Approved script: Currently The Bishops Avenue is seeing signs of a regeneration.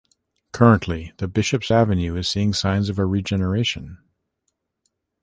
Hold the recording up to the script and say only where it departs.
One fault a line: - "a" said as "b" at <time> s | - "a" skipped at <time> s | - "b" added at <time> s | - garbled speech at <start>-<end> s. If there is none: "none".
none